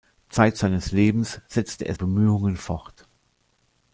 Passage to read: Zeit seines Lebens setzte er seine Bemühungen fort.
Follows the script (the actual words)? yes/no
no